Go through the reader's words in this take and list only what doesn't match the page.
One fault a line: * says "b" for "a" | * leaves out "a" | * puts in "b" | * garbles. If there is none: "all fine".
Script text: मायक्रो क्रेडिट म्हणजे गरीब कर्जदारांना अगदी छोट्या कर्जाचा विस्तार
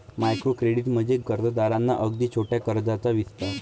* leaves out "गरीब"